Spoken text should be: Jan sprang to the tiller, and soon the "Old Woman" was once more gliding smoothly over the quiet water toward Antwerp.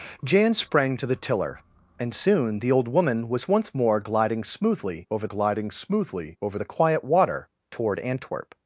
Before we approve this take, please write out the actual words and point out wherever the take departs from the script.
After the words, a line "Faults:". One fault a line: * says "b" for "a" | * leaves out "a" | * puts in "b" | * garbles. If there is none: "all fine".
Jan sprang to the tiller, and soon the "Old Woman" was once more gliding smoothly over gliding smoothly over the quiet water toward Antwerp.
Faults:
* puts in "gliding smoothly over"